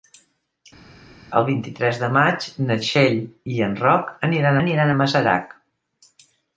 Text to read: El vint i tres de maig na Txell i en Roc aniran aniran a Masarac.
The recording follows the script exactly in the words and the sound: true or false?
true